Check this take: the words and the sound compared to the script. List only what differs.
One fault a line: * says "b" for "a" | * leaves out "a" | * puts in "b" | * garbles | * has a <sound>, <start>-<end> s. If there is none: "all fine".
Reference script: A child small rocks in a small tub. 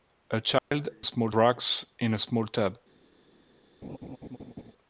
* has a dropout, 0.6-0.7 s
* has a laugh, 3.8-4.7 s